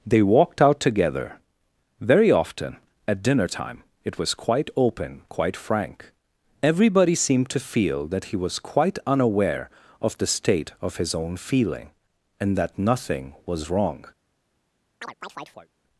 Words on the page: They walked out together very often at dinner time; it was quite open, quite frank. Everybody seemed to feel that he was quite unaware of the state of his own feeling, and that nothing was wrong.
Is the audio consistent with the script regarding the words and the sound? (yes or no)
no